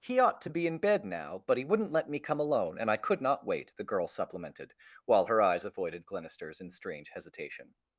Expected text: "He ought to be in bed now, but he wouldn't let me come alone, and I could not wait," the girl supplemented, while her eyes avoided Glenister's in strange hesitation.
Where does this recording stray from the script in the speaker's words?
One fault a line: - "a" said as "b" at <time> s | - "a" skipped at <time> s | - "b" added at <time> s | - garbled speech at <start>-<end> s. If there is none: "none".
none